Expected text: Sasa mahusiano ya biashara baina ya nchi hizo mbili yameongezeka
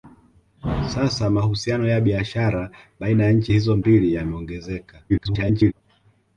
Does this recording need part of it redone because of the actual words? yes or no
yes